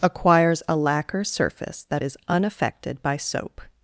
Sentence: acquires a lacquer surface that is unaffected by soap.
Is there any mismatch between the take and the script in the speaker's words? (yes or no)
no